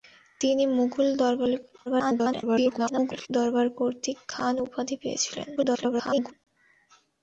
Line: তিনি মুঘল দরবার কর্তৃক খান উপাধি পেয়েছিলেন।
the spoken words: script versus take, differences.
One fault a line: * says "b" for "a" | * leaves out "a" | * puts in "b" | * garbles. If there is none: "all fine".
* garbles
* garbles